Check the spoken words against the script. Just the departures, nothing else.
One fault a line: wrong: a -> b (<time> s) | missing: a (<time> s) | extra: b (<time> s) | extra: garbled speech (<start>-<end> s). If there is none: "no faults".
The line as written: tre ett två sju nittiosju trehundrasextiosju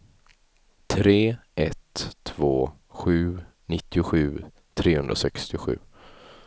no faults